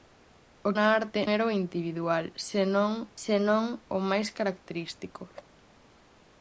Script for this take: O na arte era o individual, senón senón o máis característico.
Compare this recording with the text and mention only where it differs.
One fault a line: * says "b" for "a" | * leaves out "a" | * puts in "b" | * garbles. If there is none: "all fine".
all fine